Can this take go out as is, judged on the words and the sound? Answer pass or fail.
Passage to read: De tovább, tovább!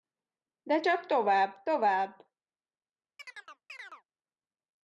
fail